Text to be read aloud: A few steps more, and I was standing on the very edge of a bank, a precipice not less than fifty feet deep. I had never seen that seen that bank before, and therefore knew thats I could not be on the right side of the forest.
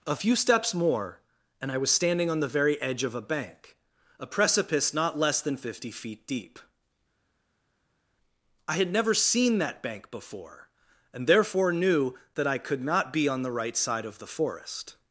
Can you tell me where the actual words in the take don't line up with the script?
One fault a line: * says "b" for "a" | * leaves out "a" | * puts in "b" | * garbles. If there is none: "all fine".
* leaves out "seen that"
* says "that" for "thats"